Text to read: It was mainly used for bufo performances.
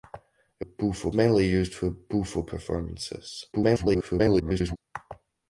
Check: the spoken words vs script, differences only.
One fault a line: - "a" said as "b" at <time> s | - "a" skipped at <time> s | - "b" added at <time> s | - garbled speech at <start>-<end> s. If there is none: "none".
- "was" said as "bufo" at 0.6 s
- garbled speech at 3.5-4.8 s